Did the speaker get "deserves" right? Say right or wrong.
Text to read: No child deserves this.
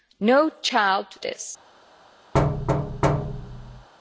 wrong